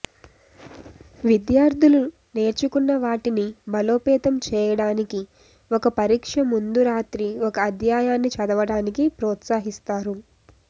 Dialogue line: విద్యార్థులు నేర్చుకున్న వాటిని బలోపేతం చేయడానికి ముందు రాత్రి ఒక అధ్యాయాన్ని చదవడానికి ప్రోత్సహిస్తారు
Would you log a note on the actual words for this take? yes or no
yes